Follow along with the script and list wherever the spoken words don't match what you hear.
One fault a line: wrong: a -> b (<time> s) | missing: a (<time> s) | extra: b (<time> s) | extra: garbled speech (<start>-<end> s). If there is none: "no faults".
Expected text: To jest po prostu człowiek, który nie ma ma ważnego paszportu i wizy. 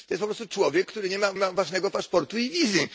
no faults